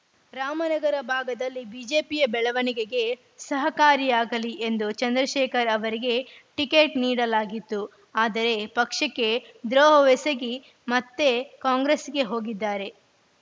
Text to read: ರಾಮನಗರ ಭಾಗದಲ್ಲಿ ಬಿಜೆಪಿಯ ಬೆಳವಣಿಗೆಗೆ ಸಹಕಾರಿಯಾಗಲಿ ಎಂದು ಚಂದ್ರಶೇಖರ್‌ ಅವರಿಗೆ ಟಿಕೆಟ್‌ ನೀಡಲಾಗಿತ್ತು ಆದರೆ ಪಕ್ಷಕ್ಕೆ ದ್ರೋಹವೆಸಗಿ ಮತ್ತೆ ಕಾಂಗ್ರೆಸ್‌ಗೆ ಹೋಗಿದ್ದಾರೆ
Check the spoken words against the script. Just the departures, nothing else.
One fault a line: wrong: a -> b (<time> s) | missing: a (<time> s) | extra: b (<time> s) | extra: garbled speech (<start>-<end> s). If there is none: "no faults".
no faults